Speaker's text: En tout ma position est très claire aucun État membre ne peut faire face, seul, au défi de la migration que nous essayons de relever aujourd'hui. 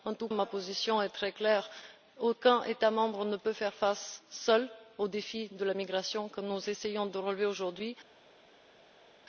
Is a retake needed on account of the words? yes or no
no